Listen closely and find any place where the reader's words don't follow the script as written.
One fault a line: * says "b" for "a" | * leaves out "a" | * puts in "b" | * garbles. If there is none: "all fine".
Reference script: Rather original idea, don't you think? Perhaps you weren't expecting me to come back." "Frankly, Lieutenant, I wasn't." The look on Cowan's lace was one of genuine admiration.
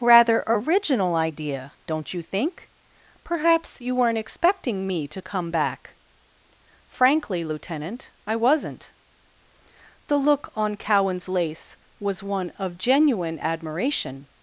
all fine